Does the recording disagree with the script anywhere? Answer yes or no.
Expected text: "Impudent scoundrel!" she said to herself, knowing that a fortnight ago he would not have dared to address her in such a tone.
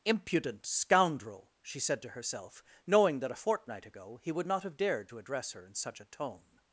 no